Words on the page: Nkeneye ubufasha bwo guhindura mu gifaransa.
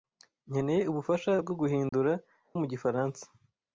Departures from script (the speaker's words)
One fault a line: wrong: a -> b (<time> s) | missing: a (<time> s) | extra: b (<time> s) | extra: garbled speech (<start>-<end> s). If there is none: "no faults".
no faults